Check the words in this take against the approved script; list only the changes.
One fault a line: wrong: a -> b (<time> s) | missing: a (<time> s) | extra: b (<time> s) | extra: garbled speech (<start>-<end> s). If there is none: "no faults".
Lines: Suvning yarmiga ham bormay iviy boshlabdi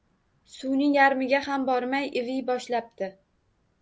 no faults